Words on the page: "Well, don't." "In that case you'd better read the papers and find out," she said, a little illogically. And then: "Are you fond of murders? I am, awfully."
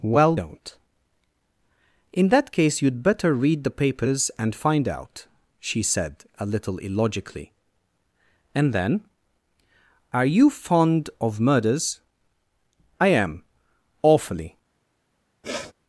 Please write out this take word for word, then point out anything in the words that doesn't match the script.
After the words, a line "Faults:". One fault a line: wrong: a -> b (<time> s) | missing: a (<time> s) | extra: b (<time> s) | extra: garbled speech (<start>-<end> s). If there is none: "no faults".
"Well, don't." "In that case you'd better read the papers and find out," she said, a little illogically. And then: "Are you fond of murders? I am, awfully."
Faults:
no faults